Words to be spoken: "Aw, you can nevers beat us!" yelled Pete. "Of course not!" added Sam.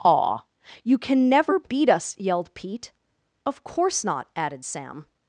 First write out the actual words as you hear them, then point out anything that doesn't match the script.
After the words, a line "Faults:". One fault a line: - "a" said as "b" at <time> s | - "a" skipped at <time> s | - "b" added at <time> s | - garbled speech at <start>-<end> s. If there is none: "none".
"Aw, you can never beat us!" yelled Pete. "Of course not!" added Sam.
Faults:
- "nevers" said as "never" at 1.3 s